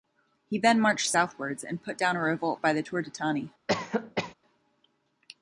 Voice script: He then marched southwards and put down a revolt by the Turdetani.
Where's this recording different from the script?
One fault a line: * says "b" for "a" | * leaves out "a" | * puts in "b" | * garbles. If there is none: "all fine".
all fine